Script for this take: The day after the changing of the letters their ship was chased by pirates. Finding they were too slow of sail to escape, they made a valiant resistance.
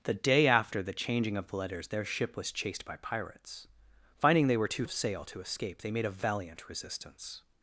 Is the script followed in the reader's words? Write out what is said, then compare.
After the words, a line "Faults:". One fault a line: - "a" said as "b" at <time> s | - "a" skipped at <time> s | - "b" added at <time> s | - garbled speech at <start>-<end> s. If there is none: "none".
The day after the changing of the letters their ship was chased by pirates. Finding they were too of sail to escape, they made a valiant resistance.
Faults:
- "slow" skipped at 4.9 s